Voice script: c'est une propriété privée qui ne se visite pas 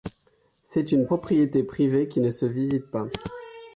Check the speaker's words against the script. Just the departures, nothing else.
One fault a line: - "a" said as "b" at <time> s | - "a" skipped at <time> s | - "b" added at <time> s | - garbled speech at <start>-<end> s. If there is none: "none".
none